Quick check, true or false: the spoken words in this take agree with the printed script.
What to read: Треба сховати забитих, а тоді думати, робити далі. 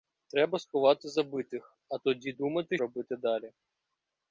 true